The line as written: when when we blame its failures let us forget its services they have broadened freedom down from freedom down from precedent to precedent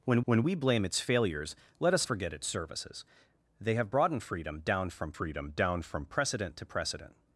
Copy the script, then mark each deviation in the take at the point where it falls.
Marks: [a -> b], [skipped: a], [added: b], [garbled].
when when we blame its failures let us forget its services they have broadened freedom down from freedom down from precedent to precedent